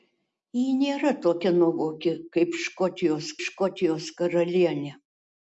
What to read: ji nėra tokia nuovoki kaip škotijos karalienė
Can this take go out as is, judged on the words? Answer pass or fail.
fail